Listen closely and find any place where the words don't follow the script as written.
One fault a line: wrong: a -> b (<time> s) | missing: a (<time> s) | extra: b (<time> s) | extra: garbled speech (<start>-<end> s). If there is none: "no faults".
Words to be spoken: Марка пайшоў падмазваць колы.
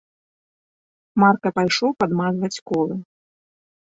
no faults